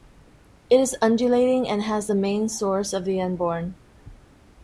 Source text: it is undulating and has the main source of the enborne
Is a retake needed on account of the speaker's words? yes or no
no